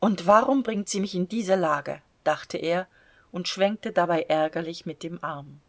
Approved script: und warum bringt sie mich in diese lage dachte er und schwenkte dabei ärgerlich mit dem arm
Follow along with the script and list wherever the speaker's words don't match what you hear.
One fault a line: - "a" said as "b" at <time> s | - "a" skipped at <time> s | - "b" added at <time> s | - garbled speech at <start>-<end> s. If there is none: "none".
none